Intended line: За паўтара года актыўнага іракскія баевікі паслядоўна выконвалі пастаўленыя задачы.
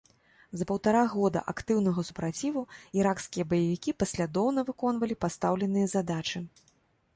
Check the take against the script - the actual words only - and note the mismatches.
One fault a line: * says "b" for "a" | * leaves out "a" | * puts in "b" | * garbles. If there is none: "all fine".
* puts in "супраціву"